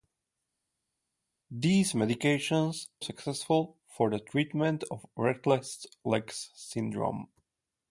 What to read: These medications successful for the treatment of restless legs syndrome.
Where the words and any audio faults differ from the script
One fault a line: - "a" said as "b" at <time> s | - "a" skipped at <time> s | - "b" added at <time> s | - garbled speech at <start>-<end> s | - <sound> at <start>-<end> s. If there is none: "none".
none